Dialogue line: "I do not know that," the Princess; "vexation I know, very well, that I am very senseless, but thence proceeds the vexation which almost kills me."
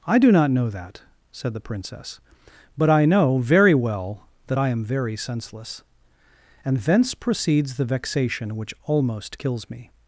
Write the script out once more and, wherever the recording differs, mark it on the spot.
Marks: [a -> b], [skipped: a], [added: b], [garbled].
"I do not know that," [added: said] the Princess; ["vexation -> but] I know, very well, that I am very senseless, [but -> and] thence proceeds the vexation which almost kills me."